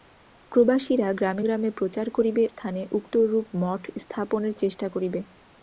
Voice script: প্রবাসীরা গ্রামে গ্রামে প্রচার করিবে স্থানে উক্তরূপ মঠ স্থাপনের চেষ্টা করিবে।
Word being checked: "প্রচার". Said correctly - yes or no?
yes